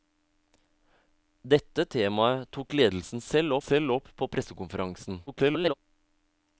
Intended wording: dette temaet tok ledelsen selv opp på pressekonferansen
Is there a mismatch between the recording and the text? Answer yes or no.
yes